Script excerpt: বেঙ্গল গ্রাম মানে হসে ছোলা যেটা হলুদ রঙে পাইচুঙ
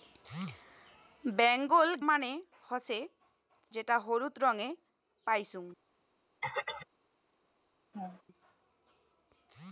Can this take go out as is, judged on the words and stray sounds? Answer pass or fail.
fail